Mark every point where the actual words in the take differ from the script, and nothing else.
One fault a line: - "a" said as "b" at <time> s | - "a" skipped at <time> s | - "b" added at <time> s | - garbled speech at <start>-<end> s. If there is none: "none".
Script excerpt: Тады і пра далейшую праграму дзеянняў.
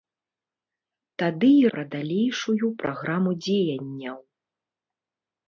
none